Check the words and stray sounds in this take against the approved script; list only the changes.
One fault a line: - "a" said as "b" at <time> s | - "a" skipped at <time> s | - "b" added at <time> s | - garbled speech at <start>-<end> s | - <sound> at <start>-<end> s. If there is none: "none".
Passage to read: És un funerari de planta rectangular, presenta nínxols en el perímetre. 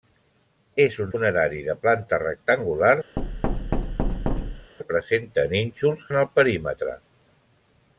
- thud at 3.2-4.7 s